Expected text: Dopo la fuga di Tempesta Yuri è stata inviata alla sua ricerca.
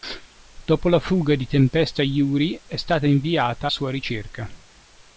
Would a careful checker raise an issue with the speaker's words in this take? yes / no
yes